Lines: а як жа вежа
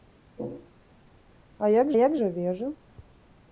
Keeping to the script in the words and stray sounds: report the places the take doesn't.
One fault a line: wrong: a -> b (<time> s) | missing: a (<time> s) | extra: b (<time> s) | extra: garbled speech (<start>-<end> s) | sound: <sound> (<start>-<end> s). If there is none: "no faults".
extra: як (2.0 s)